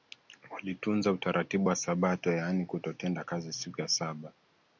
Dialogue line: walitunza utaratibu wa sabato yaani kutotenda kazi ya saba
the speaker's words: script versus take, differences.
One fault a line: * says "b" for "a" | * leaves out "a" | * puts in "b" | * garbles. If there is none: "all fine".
* puts in "siku"